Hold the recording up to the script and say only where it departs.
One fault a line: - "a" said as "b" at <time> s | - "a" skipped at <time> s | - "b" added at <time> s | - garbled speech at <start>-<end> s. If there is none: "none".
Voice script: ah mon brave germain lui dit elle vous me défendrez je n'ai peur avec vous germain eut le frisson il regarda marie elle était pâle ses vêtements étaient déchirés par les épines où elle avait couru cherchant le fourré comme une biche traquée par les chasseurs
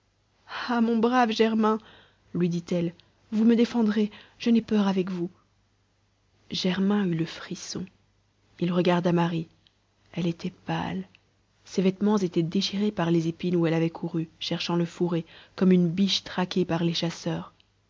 none